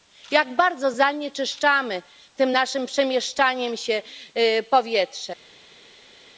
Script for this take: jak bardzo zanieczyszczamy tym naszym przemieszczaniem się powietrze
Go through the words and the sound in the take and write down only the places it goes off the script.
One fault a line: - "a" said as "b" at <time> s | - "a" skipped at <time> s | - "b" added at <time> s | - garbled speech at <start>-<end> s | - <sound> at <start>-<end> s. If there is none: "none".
none